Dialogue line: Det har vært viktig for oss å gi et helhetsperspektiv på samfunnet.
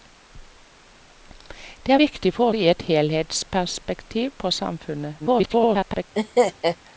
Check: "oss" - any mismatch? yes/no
yes